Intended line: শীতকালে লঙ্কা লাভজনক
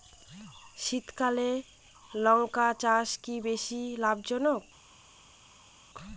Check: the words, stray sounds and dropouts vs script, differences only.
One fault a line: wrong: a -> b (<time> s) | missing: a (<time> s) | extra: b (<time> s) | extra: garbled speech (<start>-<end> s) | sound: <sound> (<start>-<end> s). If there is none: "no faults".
extra: চাষ কি বেশী (2.8 s)